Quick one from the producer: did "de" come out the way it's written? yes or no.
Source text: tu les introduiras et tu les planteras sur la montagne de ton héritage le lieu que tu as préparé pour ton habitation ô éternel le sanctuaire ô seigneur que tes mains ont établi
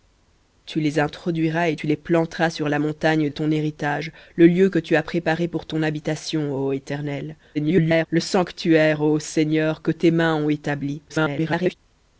no